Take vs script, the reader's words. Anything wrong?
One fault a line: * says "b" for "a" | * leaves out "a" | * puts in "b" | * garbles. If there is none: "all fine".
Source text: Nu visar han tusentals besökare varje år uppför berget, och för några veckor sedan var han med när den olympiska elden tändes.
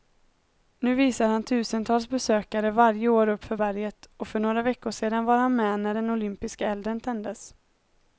all fine